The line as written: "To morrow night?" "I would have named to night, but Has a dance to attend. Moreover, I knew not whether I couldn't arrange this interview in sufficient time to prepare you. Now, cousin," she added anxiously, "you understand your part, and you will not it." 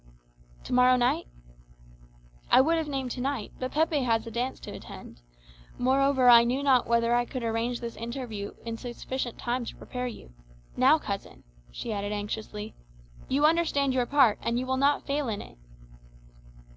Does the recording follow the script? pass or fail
fail